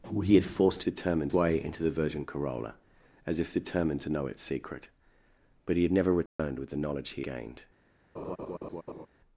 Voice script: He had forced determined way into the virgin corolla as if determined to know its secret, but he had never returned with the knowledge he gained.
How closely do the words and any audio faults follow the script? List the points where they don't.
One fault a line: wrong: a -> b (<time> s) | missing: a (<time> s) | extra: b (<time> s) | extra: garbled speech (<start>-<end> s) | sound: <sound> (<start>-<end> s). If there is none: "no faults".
sound: dropout (6.3-6.4 s)
sound: laugh (8.2-9.1 s)